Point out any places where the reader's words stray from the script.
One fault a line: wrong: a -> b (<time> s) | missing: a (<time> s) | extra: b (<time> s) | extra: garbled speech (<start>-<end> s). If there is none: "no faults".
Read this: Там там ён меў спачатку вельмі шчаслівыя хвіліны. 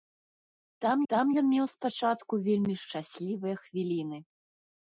no faults